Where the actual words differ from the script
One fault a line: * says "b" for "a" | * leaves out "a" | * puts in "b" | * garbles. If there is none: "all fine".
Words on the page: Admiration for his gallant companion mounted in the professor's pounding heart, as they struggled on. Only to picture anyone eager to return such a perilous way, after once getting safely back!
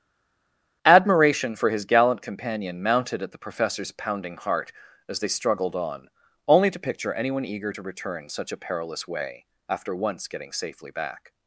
* says "at" for "in"